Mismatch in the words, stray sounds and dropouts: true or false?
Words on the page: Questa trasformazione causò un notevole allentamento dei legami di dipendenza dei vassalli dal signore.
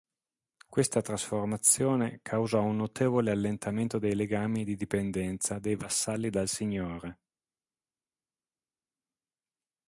false